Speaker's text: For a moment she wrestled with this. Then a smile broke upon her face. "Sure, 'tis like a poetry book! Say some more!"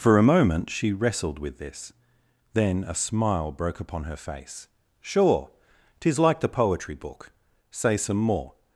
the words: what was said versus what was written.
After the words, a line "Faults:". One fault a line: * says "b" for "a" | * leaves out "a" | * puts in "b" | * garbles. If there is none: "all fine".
For a moment she wrestled with this. Then a smile broke upon her face. "Sure, 'tis like the poetry book! Say some more!"
Faults:
* says "the" for "a"